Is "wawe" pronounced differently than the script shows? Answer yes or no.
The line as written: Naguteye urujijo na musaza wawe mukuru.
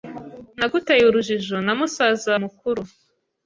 yes